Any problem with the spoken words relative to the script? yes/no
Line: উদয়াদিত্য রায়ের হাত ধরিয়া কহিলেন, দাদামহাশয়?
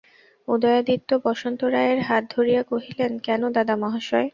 yes